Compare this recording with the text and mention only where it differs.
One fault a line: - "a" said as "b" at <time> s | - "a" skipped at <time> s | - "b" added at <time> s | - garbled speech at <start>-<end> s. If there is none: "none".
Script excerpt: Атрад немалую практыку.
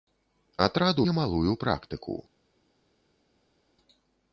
none